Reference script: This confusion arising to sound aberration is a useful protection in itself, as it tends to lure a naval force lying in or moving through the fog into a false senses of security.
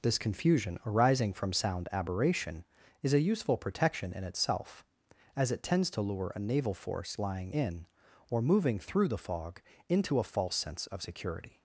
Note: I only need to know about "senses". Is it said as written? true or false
false